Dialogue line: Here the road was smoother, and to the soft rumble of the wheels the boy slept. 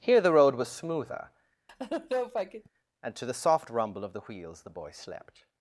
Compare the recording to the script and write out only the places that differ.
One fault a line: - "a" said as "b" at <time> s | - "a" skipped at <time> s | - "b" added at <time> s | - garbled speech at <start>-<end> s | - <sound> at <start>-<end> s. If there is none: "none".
- laugh at 1.7-2.7 s